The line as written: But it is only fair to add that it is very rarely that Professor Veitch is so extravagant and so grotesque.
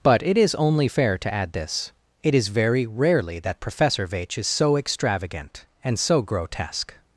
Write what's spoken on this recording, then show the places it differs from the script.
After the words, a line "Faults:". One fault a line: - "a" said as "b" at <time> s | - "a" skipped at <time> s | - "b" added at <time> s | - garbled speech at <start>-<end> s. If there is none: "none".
But it is only fair to add this it is very rarely that Professor Veitch is so extravagant and so grotesque.
Faults:
- "that" said as "this" at 1.5 s